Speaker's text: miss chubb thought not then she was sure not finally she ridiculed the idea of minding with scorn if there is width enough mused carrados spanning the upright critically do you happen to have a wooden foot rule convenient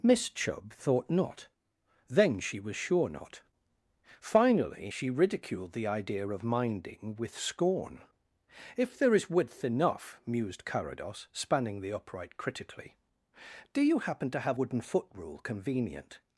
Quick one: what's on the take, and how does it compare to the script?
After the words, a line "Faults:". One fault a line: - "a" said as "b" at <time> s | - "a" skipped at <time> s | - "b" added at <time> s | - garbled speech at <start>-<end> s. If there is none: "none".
miss chubb thought not then she was sure not finally she ridiculed the idea of minding with scorn if there is width enough mused carrados spanning the upright critically do you happen to have wooden foot rule convenient
Faults:
- "a" skipped at 14.6 s